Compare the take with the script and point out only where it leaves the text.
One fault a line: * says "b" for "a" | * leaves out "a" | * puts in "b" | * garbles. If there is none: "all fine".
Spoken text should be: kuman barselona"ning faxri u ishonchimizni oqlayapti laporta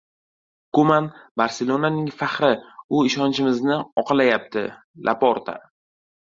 all fine